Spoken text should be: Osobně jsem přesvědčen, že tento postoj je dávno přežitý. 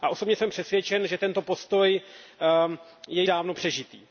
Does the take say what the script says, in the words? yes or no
yes